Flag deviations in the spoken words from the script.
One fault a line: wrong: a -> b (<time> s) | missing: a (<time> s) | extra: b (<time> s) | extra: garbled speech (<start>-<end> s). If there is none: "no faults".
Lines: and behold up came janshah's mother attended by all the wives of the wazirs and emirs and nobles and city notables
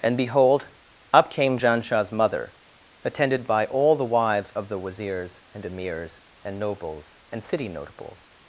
no faults